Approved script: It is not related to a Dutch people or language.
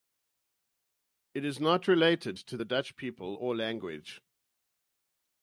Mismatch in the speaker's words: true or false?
true